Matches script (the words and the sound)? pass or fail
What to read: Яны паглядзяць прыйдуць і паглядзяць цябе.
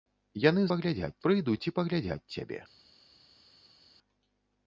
pass